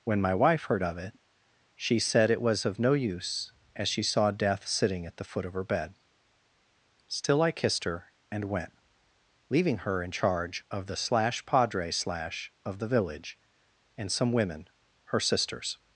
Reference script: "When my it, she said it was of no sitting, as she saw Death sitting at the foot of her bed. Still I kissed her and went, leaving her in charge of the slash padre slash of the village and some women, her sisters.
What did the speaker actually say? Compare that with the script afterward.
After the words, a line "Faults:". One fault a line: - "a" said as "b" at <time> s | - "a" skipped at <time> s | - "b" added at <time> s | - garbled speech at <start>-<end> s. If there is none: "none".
"When my wife heard of it, she said it was of no use, as she saw Death sitting at the foot of her bed. Still I kissed her and went, leaving her in charge of the slash padre slash of the village and some women, her sisters.
Faults:
- "wife heard of" added at 0.3 s
- "sitting" said as "use" at 2.9 s